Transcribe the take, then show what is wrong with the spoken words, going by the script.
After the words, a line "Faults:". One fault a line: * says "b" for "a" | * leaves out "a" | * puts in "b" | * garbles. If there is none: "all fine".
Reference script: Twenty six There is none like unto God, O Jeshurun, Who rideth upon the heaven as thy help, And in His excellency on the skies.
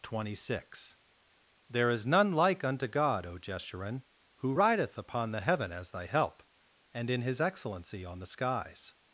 Twenty six There is none like unto God, O Jeshurun, Who rideth upon the heaven as thy help, And in His excellency on the skies.
Faults:
all fine